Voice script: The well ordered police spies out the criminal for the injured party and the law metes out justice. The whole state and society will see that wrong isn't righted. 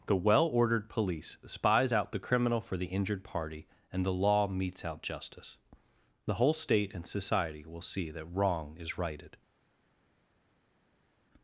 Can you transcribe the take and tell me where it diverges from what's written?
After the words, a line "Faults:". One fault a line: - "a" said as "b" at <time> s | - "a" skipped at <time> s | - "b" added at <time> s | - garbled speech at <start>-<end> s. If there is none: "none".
The well ordered police spies out the criminal for the injured party and the law metes out justice. The whole state and society will see that wrong is righted.
Faults:
- "isn't" said as "is" at 8.8 s